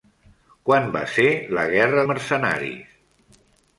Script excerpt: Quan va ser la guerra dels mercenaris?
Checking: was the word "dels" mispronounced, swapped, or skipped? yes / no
yes